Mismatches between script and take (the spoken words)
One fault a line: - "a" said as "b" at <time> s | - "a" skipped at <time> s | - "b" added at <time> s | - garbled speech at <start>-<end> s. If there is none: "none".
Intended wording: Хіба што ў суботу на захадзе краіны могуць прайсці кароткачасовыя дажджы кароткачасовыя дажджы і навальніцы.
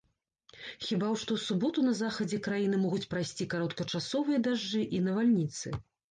- "кароткачасовыя дажджы" skipped at 4.8 s